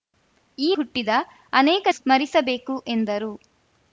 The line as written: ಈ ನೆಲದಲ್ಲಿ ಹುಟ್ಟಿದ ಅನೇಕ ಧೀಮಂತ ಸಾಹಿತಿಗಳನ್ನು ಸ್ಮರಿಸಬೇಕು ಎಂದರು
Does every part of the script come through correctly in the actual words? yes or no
no